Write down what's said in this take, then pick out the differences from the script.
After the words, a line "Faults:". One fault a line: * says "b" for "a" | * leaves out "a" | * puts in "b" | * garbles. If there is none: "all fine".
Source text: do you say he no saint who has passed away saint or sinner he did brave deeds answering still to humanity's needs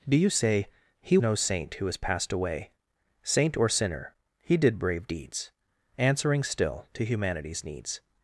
do you say he no saint who has passed away saint or sinner he did brave deeds answering still to humanity's needs
Faults:
all fine